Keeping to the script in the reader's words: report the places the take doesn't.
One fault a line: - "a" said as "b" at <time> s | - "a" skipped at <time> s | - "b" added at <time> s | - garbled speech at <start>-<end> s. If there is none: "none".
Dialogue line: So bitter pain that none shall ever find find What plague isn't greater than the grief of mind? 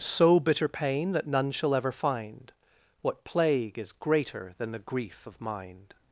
- "find" skipped at 2.5 s
- "isn't" said as "is" at 3.8 s